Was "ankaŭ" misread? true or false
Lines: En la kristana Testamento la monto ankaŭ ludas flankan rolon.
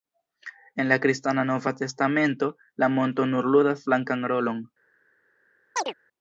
true